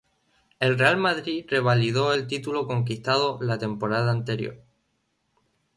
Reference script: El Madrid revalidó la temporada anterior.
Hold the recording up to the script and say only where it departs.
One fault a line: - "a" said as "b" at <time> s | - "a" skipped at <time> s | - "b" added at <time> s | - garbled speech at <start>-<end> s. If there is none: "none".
- "Real" added at 0.8 s
- "el título conquistado" added at 2.1 s